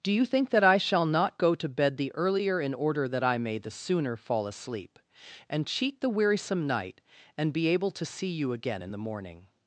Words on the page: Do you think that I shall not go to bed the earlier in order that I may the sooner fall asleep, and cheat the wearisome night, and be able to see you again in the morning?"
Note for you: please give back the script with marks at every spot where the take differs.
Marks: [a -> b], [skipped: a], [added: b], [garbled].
Do you think that I shall not go to bed the earlier in order that I may the sooner fall asleep, and cheat the wearisome night, and be able to see you again in the morning?"